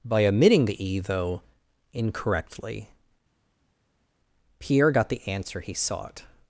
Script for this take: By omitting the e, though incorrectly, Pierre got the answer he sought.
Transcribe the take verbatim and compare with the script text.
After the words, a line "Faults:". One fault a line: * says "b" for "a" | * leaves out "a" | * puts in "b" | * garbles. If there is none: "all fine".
By omitting the e, though incorrectly, Pierre got the answer he sought.
Faults:
all fine